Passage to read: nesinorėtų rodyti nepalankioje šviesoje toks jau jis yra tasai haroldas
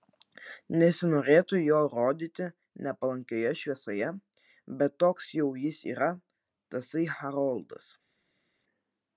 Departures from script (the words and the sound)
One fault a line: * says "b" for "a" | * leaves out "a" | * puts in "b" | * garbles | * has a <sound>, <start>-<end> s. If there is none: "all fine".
* puts in "jo"
* puts in "bet"